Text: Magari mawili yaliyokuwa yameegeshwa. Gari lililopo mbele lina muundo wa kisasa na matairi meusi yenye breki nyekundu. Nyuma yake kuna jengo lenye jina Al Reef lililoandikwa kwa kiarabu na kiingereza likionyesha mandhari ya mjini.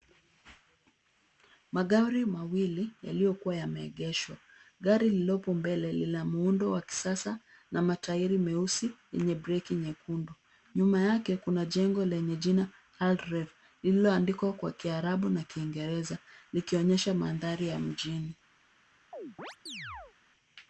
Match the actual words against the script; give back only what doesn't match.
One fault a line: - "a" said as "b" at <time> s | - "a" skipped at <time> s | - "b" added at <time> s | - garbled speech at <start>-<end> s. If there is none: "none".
none